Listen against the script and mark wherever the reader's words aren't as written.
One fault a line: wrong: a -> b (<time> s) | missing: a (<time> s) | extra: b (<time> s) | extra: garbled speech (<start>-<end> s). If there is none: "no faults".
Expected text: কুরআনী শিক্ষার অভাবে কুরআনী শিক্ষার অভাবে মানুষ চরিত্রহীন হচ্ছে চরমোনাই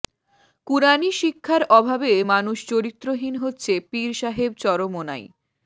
missing: কুরআনী শিক্ষার অভাবে (2.1 s)
extra: পীর সাহেব (3.9 s)